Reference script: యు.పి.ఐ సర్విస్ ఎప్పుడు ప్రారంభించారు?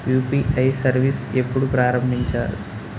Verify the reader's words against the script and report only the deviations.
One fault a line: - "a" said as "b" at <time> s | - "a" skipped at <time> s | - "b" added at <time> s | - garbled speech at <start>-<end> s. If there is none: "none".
none